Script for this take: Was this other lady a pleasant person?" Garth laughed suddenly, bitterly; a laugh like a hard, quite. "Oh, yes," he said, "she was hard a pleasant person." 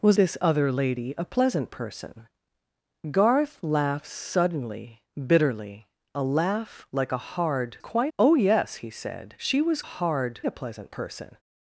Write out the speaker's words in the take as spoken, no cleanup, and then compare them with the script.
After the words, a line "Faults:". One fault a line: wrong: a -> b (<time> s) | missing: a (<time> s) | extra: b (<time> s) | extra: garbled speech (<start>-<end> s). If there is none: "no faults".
Was this other lady a pleasant person?" Garth laughed suddenly, bitterly; a laugh like a hard, quite. "Oh, yes," he said, "she was hard a pleasant person."
Faults:
no faults